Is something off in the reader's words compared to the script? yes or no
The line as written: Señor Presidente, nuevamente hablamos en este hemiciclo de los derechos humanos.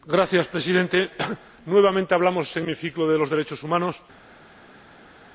yes